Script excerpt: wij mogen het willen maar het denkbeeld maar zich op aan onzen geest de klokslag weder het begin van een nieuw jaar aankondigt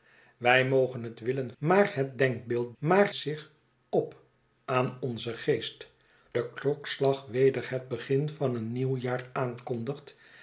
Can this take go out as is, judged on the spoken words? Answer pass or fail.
pass